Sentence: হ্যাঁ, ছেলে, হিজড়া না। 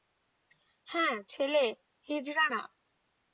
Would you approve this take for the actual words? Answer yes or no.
yes